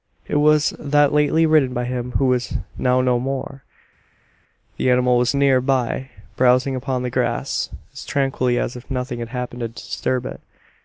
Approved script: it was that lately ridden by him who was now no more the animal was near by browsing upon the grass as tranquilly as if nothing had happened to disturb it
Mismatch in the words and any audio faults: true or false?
false